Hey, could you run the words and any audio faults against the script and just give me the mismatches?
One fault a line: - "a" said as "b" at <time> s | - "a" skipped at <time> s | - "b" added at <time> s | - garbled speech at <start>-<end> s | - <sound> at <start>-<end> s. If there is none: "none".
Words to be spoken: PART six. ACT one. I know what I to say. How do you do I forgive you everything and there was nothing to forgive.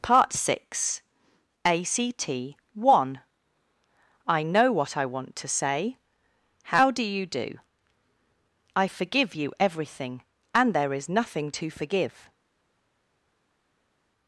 - "want" added at 5.0 s
- "was" said as "is" at 10.9 s